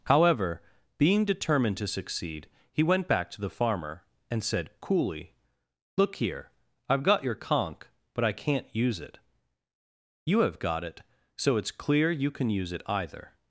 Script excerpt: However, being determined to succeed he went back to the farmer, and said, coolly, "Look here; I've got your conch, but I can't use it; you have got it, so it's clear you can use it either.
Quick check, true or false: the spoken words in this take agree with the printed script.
true